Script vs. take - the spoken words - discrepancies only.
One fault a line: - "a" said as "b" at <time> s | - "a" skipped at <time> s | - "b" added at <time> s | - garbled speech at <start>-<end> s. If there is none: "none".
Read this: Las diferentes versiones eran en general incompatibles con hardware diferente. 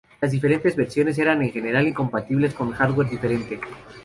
none